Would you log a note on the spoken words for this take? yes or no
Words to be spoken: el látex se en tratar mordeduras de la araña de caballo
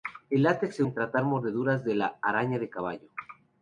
no